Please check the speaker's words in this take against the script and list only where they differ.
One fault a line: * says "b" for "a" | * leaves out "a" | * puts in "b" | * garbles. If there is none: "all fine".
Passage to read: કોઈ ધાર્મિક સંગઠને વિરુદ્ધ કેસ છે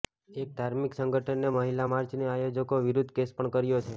* says "એક" for "કોઈ"
* puts in "મહિલા માર્ચની આયોજકો"
* puts in "પણ કર્યો"